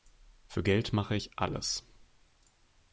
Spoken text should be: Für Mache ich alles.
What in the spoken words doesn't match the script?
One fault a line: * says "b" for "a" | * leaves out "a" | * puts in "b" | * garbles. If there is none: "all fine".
* puts in "Geld"